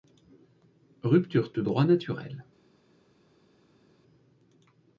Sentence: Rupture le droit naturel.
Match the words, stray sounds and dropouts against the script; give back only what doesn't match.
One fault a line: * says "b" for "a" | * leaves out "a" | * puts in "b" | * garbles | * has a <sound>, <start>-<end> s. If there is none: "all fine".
all fine